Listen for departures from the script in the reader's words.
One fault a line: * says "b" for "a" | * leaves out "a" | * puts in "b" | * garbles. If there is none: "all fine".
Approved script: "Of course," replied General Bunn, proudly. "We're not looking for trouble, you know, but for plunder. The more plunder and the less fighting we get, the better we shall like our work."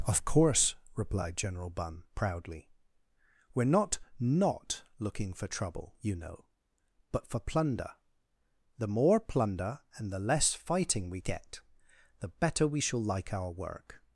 * puts in "not"